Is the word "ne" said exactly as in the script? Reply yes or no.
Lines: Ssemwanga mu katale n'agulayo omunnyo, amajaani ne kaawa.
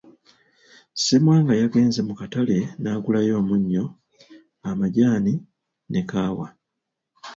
yes